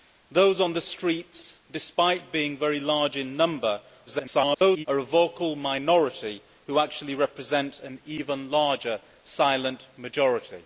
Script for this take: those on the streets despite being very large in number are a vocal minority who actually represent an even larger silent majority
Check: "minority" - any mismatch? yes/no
no